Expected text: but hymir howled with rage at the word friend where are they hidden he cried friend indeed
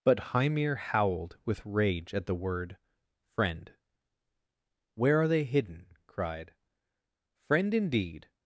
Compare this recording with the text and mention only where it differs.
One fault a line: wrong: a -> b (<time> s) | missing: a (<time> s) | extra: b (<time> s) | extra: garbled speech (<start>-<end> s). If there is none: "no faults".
missing: he (5.9 s)